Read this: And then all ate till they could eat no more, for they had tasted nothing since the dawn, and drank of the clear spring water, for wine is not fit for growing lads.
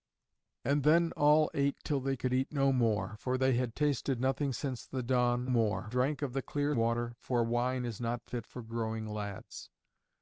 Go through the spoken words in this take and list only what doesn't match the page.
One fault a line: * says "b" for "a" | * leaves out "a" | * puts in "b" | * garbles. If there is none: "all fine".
* says "more" for "and"
* leaves out "spring"